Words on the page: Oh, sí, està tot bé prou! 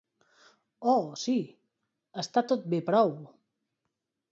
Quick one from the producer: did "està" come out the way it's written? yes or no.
yes